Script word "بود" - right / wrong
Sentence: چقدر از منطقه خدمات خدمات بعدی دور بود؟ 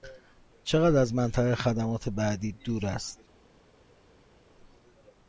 wrong